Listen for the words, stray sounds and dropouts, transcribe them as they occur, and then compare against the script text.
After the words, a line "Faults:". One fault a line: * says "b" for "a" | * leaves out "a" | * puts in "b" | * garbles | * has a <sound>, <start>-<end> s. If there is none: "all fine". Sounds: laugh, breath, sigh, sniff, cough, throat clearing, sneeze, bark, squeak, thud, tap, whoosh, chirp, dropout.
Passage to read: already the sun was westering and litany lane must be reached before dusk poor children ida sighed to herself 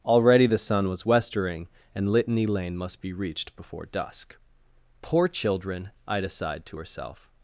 already the sun was westering and litany lane must be reached before dusk poor children ida sighed to herself
Faults:
all fine